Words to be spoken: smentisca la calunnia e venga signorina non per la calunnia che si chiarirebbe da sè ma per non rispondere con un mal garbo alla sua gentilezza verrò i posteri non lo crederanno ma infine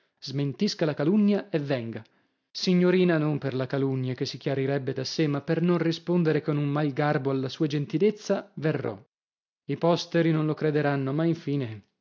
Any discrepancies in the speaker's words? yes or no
no